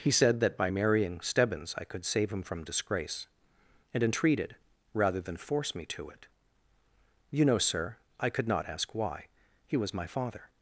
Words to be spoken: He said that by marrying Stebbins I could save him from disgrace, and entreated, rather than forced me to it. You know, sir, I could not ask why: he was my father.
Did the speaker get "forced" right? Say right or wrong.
wrong